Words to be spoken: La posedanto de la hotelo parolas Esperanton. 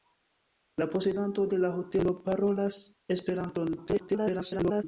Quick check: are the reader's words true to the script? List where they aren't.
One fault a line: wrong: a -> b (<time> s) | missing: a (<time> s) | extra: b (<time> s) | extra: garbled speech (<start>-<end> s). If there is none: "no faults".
extra: garbled speech (3.8-4.8 s)